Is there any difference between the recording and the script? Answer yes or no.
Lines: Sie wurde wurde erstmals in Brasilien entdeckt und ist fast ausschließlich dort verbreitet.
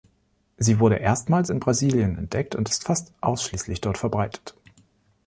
yes